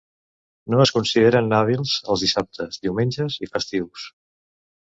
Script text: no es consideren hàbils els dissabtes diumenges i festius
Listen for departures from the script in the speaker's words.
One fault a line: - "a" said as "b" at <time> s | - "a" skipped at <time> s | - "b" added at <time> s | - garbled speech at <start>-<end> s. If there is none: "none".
none